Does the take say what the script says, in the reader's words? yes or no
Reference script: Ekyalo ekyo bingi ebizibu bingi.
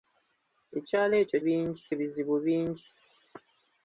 yes